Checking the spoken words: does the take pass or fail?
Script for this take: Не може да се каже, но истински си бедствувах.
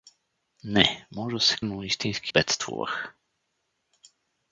fail